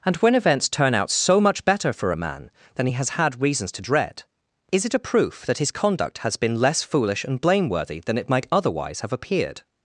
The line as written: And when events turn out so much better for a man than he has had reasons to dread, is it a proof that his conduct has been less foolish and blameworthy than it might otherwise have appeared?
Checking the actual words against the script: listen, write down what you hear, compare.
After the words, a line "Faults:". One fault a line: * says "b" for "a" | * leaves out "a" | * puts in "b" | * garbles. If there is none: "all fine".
And when events turn out so much better for a man than he has had reasons to dread, is it a proof that his conduct has been less foolish and blameworthy than it might otherwise have appeared?
Faults:
all fine